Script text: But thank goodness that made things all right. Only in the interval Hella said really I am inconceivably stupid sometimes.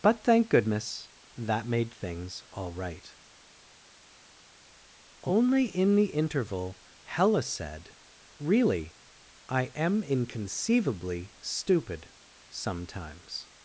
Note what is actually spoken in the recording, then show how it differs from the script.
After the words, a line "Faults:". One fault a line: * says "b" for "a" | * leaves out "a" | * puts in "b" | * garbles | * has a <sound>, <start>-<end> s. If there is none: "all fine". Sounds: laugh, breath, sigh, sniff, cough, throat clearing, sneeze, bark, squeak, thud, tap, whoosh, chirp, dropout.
But thank goodness that made things all right. Only in the interval Hella said really I am inconceivably stupid sometimes.
Faults:
all fine